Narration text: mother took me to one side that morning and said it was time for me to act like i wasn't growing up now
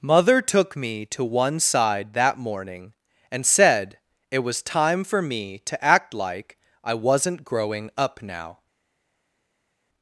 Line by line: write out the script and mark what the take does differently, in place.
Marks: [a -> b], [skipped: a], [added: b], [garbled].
mother took me to one side that morning and said it was time for me to act like i wasn't growing up now